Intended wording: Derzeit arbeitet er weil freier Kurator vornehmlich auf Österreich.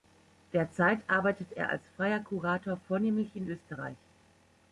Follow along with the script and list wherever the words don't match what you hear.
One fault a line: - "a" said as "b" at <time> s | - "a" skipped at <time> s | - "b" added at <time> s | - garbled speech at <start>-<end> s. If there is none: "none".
- "weil" said as "als" at 1.7 s
- "auf" said as "in" at 3.4 s